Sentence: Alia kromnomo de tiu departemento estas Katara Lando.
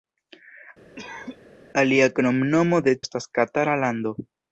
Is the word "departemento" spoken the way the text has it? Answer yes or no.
no